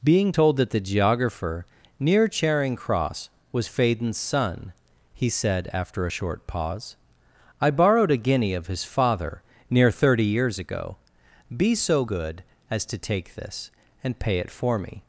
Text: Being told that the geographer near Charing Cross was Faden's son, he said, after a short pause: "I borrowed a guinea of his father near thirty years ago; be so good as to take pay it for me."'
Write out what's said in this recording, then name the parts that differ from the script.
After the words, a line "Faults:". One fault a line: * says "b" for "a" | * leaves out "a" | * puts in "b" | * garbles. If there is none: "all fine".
Being told that the geographer near Charing Cross was Faden's son, he said, after a short pause: "I borrowed a guinea of his father near thirty years ago; be so good as to take this, and pay it for me."'
Faults:
* puts in "this and"